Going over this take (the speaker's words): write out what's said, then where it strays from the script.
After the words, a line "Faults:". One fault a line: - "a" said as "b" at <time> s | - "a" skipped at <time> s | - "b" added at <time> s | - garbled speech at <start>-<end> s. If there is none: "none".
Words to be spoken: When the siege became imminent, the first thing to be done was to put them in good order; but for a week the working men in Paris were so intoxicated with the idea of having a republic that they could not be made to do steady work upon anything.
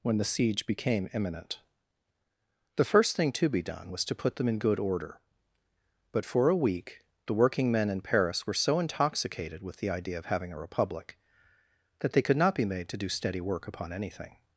When the siege became imminent, the first thing to be done was to put them in good order; but for a week the working men in Paris were so intoxicated with the idea of having a republic that they could not be made to do steady work upon anything.
Faults:
none